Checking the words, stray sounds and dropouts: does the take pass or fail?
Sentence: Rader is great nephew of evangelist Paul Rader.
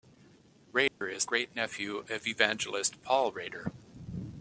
fail